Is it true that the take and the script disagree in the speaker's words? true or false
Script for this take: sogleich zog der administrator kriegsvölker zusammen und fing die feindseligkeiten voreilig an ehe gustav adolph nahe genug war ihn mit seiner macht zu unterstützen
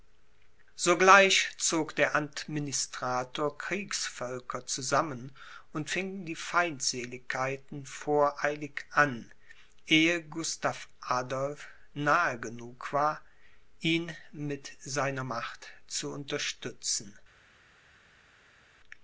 false